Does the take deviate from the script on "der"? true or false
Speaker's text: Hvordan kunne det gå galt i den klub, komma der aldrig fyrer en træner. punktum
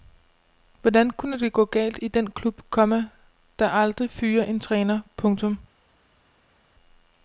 false